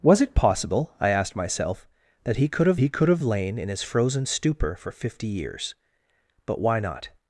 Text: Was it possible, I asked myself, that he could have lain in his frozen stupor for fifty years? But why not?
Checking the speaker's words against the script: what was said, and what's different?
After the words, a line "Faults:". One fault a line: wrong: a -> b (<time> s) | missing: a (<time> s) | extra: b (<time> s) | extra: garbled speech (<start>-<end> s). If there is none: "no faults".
Was it possible, I asked myself, that he could have he could have lain in his frozen stupor for fifty years? But why not?
Faults:
extra: he could have (2.8 s)